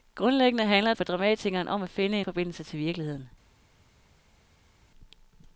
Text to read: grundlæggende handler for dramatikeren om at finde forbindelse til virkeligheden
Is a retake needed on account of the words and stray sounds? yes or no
no